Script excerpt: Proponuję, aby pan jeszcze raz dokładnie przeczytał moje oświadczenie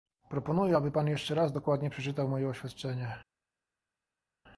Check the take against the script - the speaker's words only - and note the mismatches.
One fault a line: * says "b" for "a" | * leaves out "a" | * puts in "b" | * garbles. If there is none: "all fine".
all fine